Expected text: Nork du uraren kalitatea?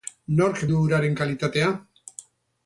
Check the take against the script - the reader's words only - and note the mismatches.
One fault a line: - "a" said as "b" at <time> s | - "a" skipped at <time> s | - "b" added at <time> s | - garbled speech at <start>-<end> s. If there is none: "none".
none